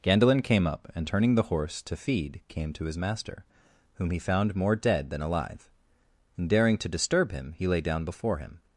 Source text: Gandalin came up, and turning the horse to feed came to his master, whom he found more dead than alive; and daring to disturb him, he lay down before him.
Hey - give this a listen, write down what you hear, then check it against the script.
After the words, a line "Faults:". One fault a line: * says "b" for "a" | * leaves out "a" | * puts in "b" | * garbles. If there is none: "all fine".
Gandalin came up, and turning the horse to feed came to his master, whom he found more dead than alive; and daring to disturb him, he lay down before him.
Faults:
all fine